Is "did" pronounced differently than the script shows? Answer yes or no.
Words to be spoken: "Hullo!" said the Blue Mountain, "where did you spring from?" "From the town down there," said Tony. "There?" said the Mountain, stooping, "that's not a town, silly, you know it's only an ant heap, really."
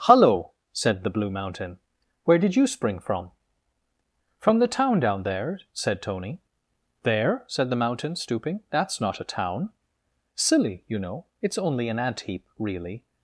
no